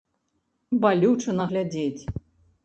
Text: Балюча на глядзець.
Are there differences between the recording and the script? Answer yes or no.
no